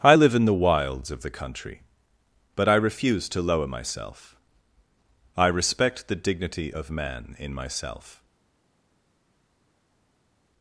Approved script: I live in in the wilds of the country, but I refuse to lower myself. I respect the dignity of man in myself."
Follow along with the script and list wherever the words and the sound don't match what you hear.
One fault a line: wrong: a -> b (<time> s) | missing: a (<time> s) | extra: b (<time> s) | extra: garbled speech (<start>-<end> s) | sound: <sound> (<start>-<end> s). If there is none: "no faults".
missing: in (0.4 s)